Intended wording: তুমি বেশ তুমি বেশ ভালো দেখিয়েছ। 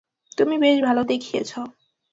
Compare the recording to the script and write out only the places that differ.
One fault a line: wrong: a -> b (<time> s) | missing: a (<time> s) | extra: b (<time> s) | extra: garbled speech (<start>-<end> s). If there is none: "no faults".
missing: তুমি বেশ (0.8 s)